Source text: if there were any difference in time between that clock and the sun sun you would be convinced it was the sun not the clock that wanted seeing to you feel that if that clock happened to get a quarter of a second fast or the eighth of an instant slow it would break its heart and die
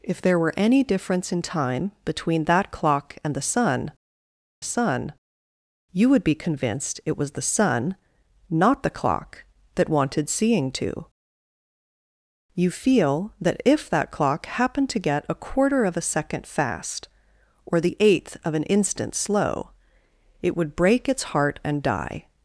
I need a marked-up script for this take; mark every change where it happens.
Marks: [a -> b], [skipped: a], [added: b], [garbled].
if there were any difference in time between that clock and the sun sun you would be convinced it was the sun not the clock that wanted seeing to you feel that if that clock happened to get a quarter of a second fast or the eighth of an instant slow it would break its heart and die